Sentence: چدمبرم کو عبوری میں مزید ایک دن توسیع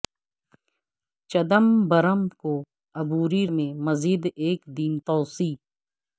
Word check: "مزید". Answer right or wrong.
right